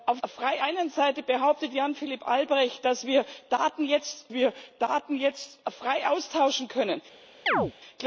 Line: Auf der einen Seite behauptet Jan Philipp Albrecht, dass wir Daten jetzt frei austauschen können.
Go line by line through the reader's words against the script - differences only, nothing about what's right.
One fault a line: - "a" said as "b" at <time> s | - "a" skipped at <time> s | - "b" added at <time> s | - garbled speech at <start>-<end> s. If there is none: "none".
- "der" said as "frei" at 0.3 s
- "wir Daten jetzt" added at 4.3 s